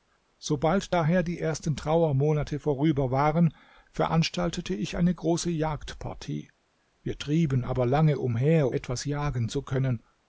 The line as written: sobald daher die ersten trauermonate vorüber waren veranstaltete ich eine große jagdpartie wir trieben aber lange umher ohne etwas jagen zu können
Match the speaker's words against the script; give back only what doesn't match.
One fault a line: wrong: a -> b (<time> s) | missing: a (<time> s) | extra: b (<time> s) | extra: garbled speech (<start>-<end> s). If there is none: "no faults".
missing: ohne (8.7 s)